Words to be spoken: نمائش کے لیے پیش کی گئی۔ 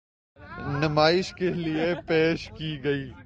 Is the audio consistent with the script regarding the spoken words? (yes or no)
yes